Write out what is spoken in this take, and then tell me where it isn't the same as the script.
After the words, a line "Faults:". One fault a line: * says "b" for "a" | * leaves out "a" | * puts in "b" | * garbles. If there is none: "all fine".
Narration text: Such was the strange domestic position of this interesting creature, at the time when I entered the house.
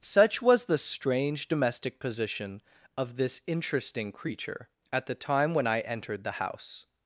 Such was the strange domestic position of this interesting creature, at the time when I entered the house.
Faults:
all fine